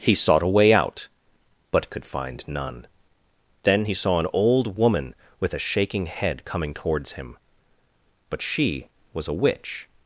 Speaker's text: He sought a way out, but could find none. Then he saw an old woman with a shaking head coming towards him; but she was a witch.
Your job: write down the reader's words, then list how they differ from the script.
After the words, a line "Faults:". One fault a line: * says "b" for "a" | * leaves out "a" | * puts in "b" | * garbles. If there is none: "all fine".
He sought a way out, but could find none. Then he saw an old woman with a shaking head coming towards him; but she was a witch.
Faults:
all fine